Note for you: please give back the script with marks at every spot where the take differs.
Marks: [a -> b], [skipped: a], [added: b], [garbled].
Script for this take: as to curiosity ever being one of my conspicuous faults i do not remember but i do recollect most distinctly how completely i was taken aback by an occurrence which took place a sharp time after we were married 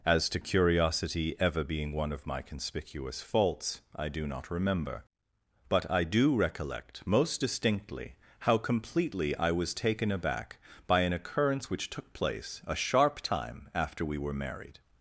as to curiosity ever being one of my conspicuous faults i do not remember but i do recollect most distinctly how completely i was taken aback by an occurrence which took place a sharp time after we were married